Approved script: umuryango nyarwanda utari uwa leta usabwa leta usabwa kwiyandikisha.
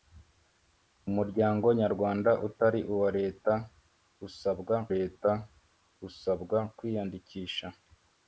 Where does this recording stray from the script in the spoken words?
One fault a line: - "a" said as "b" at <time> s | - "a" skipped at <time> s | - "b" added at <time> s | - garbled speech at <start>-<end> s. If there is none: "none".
none